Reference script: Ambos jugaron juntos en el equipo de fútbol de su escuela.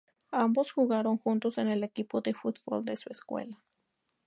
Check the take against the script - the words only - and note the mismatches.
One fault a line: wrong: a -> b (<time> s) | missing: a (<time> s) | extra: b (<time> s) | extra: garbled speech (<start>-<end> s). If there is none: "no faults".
no faults